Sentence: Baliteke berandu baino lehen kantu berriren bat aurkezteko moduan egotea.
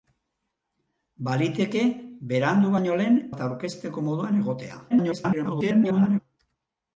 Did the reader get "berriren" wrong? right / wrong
wrong